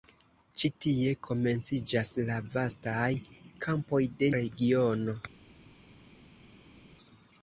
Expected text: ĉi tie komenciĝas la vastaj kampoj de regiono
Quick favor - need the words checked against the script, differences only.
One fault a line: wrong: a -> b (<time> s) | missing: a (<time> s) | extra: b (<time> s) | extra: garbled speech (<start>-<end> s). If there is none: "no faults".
no faults